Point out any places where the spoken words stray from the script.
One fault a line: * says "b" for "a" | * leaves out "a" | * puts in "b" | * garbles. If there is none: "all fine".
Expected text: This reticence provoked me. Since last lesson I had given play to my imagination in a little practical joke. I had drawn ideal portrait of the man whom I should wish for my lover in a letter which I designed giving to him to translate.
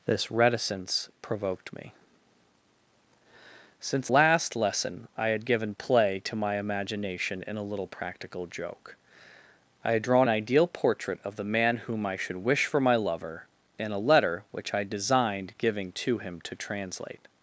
all fine